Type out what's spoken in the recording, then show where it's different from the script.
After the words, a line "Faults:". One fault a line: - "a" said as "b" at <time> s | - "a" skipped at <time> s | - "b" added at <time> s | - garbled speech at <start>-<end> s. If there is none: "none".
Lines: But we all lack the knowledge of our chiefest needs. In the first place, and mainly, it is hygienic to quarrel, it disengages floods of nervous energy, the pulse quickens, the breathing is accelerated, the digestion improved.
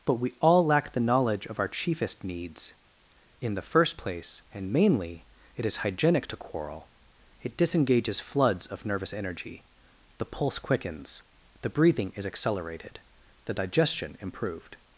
But we all lack the knowledge of our chiefest needs. In the first place, and mainly, it is hygienic to quarrel, it disengages floods of nervous energy, the pulse quickens, the breathing is accelerated, the digestion improved.
Faults:
none